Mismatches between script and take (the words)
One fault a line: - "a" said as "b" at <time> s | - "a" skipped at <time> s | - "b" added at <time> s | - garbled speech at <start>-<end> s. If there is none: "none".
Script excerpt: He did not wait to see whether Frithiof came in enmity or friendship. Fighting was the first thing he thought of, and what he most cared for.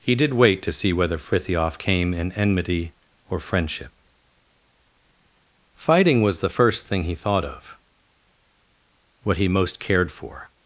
- "not" skipped at 0.3 s
- "and" skipped at 7.8 s